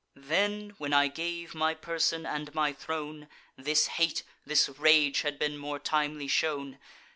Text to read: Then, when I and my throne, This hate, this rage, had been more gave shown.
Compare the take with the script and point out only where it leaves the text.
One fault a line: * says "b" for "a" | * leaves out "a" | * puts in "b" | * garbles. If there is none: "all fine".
* puts in "gave my person"
* says "timely" for "gave"